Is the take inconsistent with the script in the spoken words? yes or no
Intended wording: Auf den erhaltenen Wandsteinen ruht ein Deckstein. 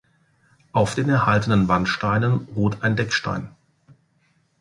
no